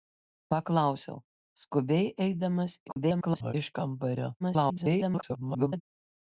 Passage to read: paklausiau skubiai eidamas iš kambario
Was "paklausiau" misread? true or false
false